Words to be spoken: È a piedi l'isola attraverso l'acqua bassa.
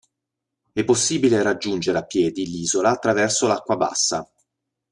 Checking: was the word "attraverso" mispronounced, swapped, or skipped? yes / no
no